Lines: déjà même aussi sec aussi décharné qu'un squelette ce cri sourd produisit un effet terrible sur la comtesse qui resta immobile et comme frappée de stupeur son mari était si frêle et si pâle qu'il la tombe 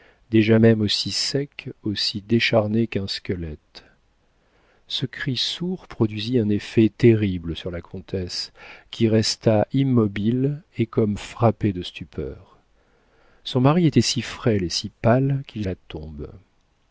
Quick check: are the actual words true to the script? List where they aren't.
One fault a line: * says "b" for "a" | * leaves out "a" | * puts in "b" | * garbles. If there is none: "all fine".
all fine